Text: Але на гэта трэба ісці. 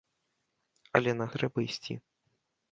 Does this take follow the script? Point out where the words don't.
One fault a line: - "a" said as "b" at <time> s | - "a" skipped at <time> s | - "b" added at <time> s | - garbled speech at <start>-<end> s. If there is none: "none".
- "гэта" skipped at 1.2 s